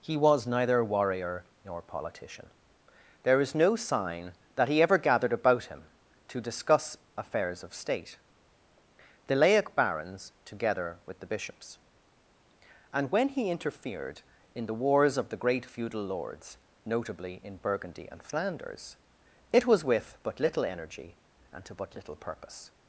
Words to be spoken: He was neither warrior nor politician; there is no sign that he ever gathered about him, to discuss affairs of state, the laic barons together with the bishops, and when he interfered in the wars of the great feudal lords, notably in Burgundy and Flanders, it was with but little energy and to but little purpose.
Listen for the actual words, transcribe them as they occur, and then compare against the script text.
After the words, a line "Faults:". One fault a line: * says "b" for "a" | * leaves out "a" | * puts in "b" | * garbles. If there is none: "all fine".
He was neither warrior nor politician; there is no sign that he ever gathered about him, to discuss affairs of state, the laic barons together with the bishops, and when he interfered in the wars of the great feudal lords, notably in Burgundy and Flanders, it was with but little energy and to but little purpose.
Faults:
all fine